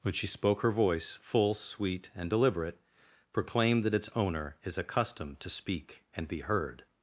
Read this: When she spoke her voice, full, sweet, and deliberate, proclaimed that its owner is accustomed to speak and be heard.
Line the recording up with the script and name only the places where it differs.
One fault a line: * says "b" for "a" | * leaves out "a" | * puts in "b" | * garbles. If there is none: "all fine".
all fine